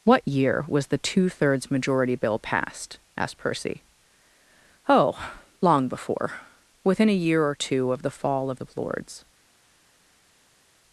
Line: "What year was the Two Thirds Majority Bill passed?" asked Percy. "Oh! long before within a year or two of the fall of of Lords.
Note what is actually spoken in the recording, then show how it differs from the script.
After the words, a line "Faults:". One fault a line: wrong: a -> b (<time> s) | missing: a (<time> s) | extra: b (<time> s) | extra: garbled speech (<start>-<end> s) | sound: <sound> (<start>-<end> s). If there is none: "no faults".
"What year was the Two Thirds Majority Bill passed?" asked Percy. "Oh! long before within a year or two of the fall of of Lords.
Faults:
no faults